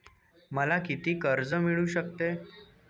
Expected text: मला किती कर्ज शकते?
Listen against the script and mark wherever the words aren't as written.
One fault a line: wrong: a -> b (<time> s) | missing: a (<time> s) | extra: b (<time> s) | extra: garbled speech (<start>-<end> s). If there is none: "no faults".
extra: मिळू (1.5 s)